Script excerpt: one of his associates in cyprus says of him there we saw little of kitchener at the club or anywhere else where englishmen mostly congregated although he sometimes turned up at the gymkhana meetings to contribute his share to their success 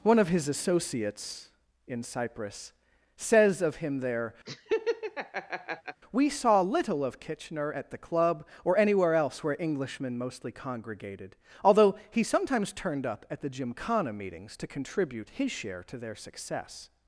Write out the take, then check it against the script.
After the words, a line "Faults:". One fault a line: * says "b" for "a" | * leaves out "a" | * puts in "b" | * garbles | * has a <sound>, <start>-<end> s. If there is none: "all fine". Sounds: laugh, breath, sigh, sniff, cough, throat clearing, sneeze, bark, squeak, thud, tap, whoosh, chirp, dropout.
one of his associates in cyprus says of him there we saw little of kitchener at the club or anywhere else where englishmen mostly congregated although he sometimes turned up at the gymkhana meetings to contribute his share to their success
Faults:
* has a laugh, 4.5-6.0 s